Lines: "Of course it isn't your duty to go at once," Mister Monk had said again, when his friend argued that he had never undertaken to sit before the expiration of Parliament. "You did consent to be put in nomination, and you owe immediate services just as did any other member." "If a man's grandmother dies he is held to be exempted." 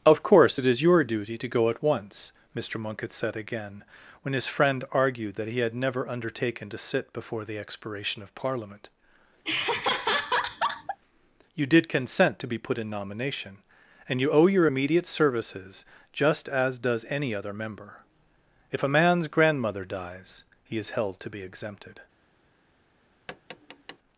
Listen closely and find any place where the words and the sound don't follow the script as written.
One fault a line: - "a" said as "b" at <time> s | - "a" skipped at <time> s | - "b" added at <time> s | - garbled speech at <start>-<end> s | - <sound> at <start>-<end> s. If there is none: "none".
- "isn't" said as "is" at 0.6 s
- laugh at 9.4-11.0 s
- "your" added at 14.5 s
- "did" said as "does" at 16.8 s
- tap at 23.3-24.0 s